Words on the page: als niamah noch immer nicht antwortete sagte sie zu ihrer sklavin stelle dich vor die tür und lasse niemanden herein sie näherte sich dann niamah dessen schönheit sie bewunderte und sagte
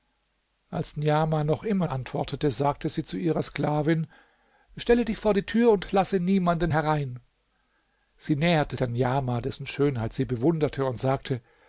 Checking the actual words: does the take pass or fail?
fail